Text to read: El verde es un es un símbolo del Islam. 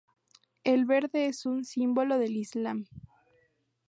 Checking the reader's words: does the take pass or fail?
fail